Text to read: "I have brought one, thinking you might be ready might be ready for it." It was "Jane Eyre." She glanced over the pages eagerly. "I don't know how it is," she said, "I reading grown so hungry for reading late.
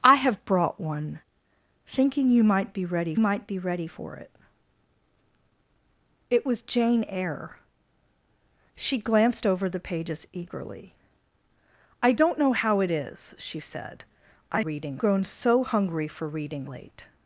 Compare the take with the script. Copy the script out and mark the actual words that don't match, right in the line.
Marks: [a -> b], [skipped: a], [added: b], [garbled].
"I have brought one, thinking you might be ready might be ready for it." It was "Jane Eyre." She glanced over the pages eagerly. "I don't know how it is," she said, "I reading grown so hungry for reading late.